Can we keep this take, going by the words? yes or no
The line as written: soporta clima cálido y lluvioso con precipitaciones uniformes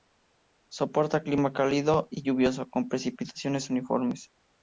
yes